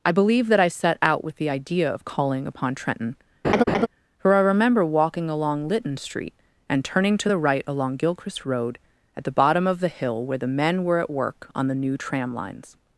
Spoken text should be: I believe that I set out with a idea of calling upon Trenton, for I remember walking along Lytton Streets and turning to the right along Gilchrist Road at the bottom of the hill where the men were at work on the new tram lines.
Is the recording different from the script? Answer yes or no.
yes